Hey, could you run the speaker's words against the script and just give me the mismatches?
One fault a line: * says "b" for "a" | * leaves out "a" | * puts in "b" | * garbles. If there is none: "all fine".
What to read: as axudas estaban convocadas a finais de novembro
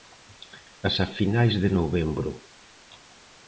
* leaves out "axudas estaban convocadas"